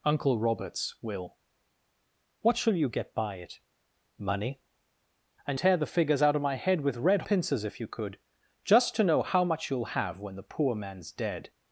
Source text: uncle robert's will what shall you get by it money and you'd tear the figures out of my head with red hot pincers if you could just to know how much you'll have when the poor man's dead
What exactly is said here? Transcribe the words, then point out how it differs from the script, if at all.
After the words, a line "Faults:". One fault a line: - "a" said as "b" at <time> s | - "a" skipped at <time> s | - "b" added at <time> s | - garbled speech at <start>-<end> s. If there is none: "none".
uncle robert's will what shall you get by it money and tear the figures out of my head with red pincers if you could just to know how much you'll have when the poor man's dead
Faults:
- "you'd" skipped at 5.6 s
- "hot" skipped at 7.2 s